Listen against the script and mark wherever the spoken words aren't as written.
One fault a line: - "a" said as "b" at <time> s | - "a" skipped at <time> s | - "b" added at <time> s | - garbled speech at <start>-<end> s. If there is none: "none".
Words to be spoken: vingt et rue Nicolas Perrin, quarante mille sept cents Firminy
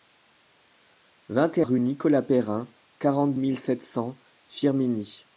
none